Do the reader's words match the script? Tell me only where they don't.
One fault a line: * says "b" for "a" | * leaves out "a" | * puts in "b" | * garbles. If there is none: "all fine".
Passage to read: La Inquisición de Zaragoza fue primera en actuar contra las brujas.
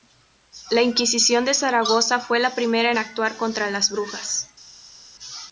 * puts in "la"